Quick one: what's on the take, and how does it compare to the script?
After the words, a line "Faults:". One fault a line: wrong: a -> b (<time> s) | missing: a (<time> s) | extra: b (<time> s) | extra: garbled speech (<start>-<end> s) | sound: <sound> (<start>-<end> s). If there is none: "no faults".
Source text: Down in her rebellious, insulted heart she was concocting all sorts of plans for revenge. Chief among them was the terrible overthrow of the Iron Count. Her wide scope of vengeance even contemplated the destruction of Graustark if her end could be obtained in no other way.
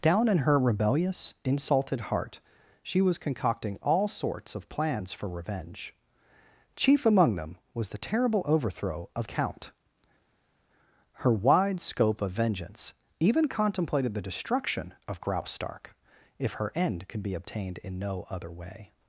Down in her rebellious, insulted heart she was concocting all sorts of plans for revenge. Chief among them was the terrible overthrow of Count. Her wide scope of vengeance even contemplated the destruction of Graustark if her end could be obtained in no other way.
Faults:
missing: the Iron (9.3 s)